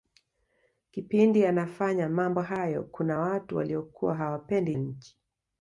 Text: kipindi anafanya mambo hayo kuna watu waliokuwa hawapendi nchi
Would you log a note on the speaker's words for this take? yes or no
no